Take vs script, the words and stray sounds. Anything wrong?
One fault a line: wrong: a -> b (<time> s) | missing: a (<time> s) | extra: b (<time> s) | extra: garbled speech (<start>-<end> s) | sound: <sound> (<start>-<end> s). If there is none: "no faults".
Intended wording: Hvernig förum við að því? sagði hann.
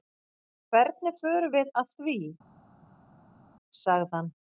no faults